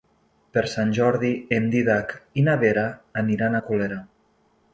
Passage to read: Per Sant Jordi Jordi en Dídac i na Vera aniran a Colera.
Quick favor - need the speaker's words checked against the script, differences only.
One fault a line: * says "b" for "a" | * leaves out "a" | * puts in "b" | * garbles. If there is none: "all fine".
* leaves out "Jordi"